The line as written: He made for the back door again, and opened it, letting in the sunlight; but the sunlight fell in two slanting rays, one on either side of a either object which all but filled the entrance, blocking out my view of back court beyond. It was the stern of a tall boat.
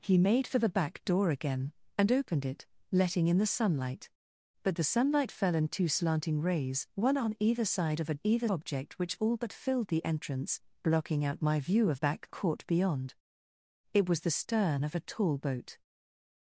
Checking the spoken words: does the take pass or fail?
pass